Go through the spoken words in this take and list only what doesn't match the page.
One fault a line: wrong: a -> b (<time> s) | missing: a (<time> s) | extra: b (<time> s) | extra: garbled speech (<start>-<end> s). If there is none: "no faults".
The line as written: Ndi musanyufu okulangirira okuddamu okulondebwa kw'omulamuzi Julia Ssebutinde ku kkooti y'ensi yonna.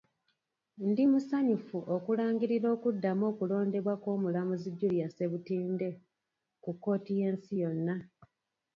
no faults